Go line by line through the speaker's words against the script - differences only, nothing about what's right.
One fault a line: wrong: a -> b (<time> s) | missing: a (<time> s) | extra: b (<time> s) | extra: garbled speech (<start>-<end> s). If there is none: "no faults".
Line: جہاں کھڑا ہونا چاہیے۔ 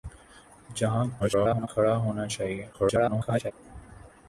extra: garbled speech (1.2-1.7 s)
extra: garbled speech (2.7-3.5 s)